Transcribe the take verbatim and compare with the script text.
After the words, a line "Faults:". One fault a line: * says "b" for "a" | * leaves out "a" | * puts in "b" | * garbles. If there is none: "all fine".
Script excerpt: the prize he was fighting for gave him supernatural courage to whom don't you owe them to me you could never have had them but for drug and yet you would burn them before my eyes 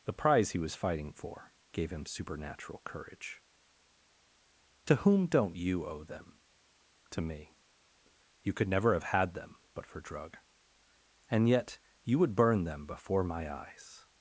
the prize he was fighting for gave him supernatural courage to whom don't you owe them to me you could never have had them but for drug and yet you would burn them before my eyes
Faults:
all fine